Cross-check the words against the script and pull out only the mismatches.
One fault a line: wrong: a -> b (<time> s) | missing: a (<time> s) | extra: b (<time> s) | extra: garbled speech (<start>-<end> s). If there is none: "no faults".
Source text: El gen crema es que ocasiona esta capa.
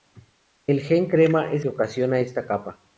no faults